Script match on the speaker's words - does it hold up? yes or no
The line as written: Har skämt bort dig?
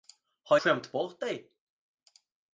yes